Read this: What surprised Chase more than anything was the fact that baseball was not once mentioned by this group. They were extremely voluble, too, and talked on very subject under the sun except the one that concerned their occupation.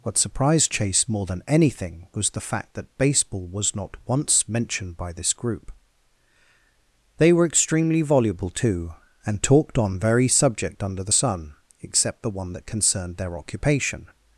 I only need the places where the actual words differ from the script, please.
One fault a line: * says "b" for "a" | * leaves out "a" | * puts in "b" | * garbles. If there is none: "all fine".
all fine